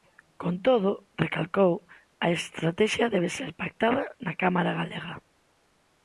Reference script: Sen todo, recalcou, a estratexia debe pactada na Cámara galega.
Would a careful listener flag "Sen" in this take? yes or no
yes